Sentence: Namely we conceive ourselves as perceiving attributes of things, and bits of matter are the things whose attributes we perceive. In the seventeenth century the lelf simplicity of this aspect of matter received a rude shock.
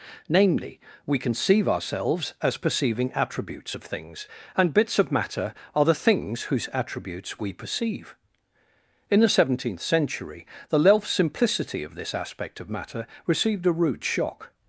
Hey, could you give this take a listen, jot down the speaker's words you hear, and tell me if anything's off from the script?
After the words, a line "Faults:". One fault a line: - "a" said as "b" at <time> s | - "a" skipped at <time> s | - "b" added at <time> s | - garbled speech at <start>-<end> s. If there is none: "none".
Namely we conceive ourselves as perceiving attributes of things, and bits of matter are the things whose attributes we perceive. In the seventeenth century the lelf simplicity of this aspect of matter received a rude shock.
Faults:
none